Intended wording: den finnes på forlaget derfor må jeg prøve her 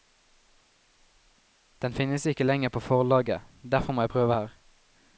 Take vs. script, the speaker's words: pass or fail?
fail